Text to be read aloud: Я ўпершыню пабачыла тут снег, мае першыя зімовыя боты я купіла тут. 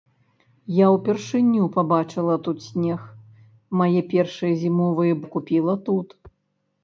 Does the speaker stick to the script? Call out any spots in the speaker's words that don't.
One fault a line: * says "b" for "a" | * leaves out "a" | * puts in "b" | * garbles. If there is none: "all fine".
* leaves out "боты"